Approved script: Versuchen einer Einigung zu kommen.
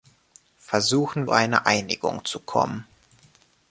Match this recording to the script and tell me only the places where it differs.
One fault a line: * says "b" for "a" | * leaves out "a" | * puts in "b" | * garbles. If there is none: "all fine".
all fine